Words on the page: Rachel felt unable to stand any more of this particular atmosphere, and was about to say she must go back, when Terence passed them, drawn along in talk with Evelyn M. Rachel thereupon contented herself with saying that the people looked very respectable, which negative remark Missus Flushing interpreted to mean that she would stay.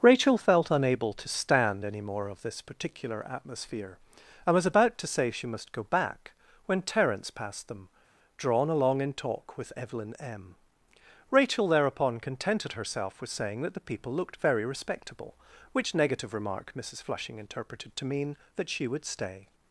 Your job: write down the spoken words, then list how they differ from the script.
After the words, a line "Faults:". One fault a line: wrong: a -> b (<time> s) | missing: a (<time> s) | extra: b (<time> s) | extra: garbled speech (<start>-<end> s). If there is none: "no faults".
Rachel felt unable to stand any more of this particular atmosphere, and was about to say she must go back, when Terence passed them, drawn along in talk with Evelyn M. Rachel thereupon contented herself with saying that the people looked very respectable, which negative remark Missus Flushing interpreted to mean that she would stay.
Faults:
no faults